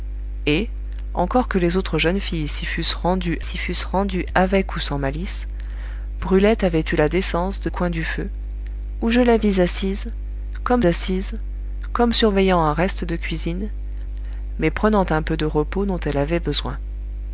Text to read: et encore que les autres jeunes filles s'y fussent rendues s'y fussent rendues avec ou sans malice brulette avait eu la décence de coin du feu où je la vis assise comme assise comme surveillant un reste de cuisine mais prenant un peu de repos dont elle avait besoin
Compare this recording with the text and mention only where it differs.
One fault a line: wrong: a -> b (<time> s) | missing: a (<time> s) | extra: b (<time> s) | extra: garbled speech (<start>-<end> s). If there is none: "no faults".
no faults